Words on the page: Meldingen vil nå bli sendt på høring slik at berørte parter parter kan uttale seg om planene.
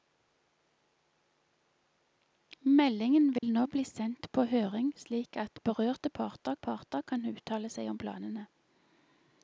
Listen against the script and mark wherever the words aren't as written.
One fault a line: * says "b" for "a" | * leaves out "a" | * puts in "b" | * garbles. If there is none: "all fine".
all fine